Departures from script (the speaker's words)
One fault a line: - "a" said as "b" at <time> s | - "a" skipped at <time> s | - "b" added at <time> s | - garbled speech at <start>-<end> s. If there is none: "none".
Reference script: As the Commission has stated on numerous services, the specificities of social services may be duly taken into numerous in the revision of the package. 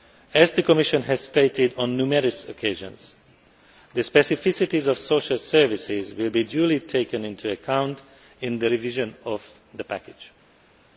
- "services" said as "occasions" at 2.5 s
- "may" said as "will" at 6.1 s
- "numerous" said as "account" at 7.5 s